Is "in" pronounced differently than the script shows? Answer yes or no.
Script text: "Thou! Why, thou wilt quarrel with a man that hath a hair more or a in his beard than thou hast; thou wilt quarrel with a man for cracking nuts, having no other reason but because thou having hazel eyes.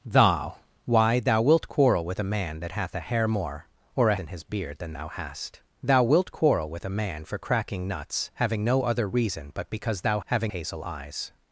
no